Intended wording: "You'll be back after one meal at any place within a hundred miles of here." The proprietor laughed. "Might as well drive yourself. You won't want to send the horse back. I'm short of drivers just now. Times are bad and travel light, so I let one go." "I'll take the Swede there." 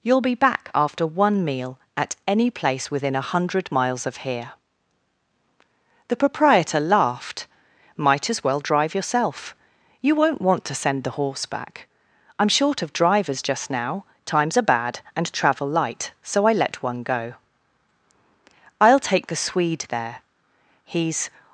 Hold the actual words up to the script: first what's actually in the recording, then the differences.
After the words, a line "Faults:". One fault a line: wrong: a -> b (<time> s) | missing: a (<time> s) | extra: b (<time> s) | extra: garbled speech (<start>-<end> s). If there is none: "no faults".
"You'll be back after one meal at any place within a hundred miles of here." The proprietor laughed. "Might as well drive yourself. You won't want to send the horse back. I'm short of drivers just now. Times are bad and travel light, so I let one go." "I'll take the Swede there." "He's
Faults:
extra: He's (20.9 s)